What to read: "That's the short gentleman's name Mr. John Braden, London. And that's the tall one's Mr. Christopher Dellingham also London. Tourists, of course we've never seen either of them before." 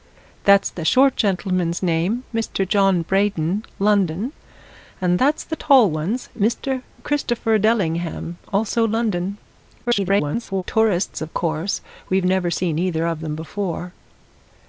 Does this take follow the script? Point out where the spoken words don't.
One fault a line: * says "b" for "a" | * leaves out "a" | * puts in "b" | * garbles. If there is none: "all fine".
* garbles